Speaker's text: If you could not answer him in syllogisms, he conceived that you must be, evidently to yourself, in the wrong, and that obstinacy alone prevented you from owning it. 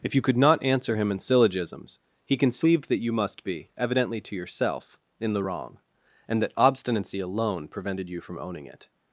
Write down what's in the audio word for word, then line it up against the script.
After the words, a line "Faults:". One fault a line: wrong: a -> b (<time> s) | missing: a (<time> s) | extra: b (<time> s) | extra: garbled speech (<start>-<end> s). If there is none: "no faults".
If you could not answer him in syllogisms, he conceived that you must be, evidently to yourself, in the wrong, and that obstinacy alone prevented you from owning it.
Faults:
no faults